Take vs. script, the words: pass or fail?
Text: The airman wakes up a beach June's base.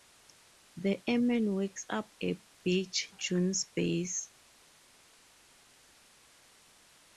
pass